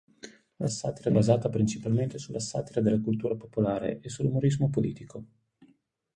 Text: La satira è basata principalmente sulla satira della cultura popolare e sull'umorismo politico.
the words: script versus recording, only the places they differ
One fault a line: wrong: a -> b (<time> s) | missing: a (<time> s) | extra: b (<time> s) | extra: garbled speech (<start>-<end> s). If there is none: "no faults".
no faults